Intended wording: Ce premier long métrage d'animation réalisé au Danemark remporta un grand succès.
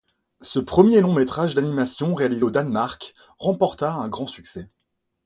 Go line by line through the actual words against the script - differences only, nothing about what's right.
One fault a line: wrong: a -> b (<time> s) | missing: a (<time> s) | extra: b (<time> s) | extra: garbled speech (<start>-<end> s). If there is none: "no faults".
no faults